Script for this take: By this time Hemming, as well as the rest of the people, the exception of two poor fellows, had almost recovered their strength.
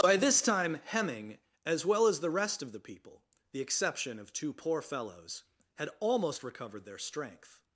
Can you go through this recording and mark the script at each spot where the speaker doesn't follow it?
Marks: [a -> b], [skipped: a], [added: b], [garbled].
By this time Hemming, as well as the rest of the people, the exception of two poor fellows, had almost recovered their strength.